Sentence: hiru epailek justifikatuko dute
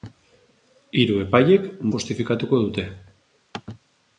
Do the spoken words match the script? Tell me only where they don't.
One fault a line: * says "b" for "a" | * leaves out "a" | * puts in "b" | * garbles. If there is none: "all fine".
all fine